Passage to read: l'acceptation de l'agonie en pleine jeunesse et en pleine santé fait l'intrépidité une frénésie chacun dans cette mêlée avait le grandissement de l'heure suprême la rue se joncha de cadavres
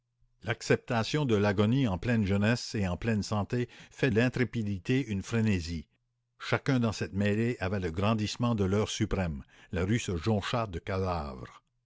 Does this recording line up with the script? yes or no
yes